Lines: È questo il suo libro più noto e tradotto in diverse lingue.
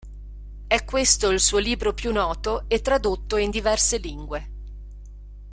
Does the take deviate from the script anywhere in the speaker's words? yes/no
no